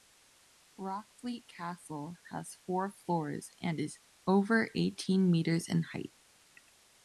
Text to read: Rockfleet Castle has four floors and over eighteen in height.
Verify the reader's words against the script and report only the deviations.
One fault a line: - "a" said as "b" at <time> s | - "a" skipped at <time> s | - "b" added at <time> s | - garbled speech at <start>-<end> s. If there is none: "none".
- "is" added at 3.8 s
- "metres" added at 5.3 s